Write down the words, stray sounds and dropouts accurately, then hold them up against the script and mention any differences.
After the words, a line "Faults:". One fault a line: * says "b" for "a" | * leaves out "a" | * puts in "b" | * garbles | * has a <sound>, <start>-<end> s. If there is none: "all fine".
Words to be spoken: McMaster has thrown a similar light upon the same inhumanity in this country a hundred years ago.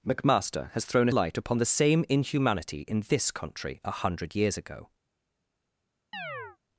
McMaster has thrown a light upon the same inhumanity in this country a hundred years ago.
Faults:
* leaves out "similar"
* has a chirp, 6.1-6.6 s